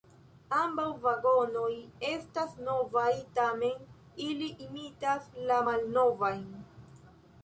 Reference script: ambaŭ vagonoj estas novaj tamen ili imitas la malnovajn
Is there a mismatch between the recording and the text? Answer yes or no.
no